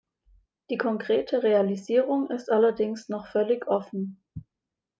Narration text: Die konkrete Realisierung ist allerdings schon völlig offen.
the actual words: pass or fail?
fail